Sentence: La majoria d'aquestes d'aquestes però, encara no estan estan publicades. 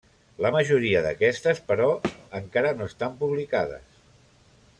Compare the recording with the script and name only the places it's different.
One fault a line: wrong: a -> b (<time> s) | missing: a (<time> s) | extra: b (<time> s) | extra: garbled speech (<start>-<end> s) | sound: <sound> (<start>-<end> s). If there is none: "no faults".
missing: d'aquestes (1.6 s)
sound: thud (2.0-2.2 s)
missing: estan (3.2 s)